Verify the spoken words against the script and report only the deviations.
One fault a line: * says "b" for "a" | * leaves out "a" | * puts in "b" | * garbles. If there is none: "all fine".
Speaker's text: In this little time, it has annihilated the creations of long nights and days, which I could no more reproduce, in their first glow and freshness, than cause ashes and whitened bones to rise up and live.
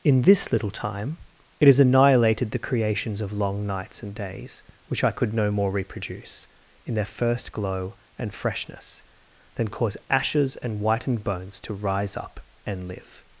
all fine